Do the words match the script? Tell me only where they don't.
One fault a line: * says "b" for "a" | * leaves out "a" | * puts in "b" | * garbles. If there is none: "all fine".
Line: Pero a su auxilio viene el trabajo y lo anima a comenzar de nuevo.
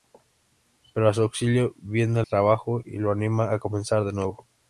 * leaves out "el"